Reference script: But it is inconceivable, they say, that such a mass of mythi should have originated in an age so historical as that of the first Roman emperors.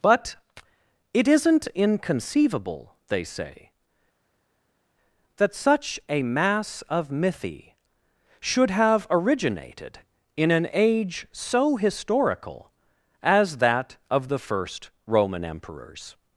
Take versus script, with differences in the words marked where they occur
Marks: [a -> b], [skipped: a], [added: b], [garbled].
But it [is -> isn't] inconceivable, they say, that such a mass of mythi should have originated in an age so historical as that of the first Roman emperors.